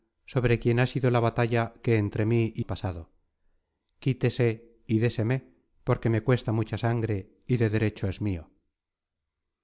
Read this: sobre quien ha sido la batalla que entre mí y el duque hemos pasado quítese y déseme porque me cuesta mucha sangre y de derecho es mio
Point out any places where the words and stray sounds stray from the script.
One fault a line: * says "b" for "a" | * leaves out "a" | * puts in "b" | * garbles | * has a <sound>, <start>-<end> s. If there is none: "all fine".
* leaves out "el duque hemos"